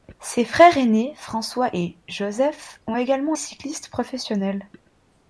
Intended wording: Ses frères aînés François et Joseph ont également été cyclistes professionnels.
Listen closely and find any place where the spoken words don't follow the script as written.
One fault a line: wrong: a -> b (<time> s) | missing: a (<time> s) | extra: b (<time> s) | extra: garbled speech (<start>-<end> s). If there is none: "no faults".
missing: été (3.3 s)